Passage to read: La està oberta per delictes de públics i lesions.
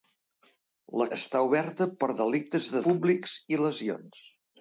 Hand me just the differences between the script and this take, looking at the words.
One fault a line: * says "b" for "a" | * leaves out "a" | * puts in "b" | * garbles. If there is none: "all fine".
all fine